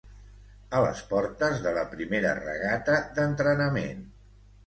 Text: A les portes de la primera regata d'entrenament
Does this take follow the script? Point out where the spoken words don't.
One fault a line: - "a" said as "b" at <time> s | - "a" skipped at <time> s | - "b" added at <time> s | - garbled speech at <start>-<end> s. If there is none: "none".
none